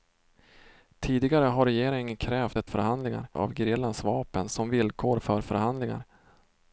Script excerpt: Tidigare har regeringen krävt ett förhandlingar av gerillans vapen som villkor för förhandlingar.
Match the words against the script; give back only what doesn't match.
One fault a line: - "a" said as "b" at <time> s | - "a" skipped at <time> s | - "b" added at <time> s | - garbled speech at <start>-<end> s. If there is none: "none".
none